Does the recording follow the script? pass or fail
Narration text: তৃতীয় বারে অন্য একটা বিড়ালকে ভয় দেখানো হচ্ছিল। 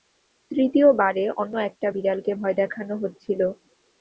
pass